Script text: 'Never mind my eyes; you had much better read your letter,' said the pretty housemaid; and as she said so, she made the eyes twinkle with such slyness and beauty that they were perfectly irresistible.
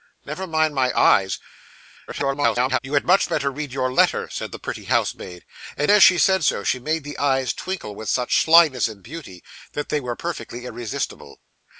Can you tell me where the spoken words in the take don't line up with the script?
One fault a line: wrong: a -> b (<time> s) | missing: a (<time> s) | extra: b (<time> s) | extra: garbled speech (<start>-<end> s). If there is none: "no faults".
extra: garbled speech (2.1-2.8 s)